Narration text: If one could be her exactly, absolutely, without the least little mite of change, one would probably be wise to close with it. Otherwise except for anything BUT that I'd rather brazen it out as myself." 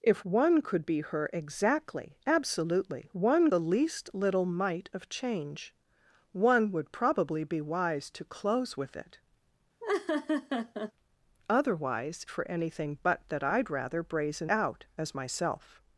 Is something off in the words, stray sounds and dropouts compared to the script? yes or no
yes